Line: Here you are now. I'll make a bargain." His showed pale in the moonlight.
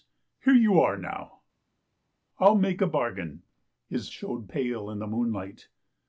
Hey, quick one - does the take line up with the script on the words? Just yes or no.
yes